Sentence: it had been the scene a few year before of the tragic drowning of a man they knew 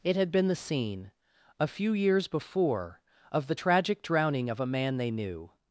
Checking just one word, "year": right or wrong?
wrong